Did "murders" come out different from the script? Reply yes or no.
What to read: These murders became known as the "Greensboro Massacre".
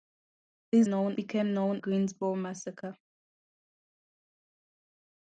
yes